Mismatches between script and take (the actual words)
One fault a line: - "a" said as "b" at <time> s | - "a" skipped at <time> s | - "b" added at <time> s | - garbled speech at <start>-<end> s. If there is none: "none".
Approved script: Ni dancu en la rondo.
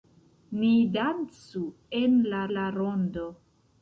- "la" added at 2.6 s